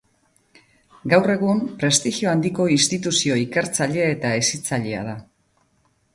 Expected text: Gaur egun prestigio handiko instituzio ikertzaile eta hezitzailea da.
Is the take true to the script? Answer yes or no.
yes